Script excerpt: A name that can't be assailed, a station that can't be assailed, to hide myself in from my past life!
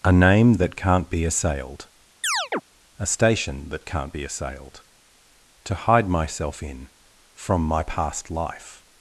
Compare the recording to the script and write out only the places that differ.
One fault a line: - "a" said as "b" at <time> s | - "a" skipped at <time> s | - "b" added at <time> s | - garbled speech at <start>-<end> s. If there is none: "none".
none